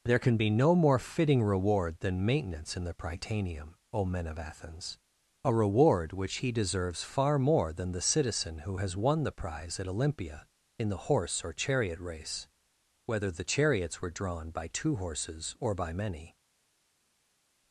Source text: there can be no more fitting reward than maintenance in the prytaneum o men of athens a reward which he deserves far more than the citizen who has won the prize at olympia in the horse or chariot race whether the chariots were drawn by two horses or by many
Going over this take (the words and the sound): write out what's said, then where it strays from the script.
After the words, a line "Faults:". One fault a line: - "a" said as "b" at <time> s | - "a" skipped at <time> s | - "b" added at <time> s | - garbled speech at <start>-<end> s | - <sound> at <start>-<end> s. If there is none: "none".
there can be no more fitting reward than maintenance in the prytaneum o men of athens a reward which he deserves far more than the citizen who has won the prize at olympia in the horse or chariot race whether the chariots were drawn by two horses or by many
Faults:
none